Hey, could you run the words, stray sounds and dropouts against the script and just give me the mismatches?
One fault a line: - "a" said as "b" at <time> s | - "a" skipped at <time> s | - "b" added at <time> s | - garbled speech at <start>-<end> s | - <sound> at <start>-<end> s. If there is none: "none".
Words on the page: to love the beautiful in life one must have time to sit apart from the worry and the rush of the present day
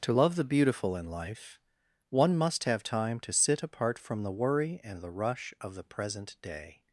none